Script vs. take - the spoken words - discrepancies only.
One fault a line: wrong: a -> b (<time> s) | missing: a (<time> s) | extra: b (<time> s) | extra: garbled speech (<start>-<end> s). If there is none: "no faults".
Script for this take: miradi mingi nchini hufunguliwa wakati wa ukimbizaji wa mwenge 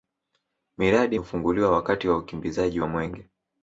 missing: mingi nchini (1.2 s)